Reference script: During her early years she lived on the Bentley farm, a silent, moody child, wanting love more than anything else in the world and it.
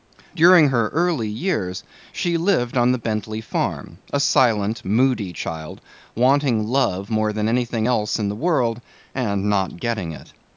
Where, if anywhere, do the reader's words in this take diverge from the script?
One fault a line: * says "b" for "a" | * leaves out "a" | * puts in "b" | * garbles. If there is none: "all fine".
* puts in "not getting"